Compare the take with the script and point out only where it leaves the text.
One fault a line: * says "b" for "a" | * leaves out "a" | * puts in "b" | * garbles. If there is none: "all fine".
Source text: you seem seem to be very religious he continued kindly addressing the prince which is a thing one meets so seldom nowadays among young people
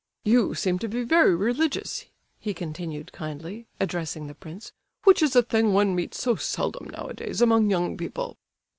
* leaves out "seem"